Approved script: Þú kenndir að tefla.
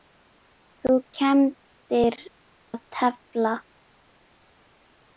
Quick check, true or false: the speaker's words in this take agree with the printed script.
true